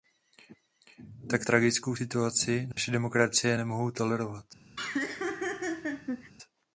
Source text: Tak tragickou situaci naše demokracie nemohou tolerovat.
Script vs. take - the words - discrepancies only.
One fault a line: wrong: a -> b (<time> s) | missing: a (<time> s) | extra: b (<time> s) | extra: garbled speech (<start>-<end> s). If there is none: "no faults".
no faults